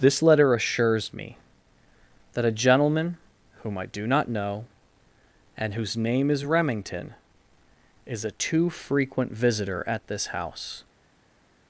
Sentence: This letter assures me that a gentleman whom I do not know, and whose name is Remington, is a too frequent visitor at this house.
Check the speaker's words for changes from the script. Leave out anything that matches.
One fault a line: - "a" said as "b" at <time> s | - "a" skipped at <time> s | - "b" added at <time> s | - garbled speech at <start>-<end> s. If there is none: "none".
none